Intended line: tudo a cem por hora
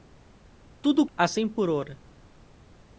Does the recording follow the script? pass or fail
pass